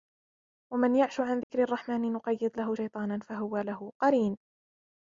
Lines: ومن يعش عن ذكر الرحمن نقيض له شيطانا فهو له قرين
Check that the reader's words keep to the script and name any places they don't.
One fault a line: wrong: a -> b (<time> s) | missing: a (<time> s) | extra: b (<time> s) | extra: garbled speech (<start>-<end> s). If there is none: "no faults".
no faults